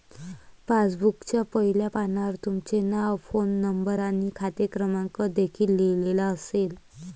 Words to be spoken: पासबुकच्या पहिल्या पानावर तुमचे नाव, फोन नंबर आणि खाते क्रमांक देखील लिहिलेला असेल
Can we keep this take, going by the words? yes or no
yes